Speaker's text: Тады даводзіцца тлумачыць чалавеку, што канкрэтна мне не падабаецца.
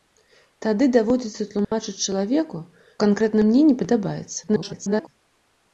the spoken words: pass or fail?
fail